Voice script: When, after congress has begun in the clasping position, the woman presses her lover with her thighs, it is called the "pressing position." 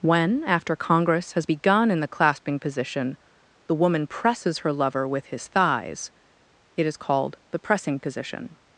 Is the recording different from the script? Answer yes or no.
yes